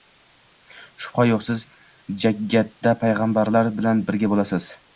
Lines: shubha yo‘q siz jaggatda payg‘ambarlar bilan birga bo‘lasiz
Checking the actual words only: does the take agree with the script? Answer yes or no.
yes